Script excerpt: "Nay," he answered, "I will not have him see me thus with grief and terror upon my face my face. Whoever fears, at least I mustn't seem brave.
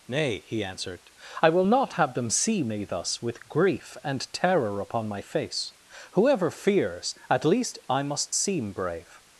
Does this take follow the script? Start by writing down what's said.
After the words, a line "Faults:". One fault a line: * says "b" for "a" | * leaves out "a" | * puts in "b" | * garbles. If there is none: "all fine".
"Nay," he answered, "I will not have them see me thus with grief and terror upon my face. Whoever fears, at least I must seem brave.
Faults:
* says "them" for "him"
* leaves out "my face"
* says "must" for "mustn't"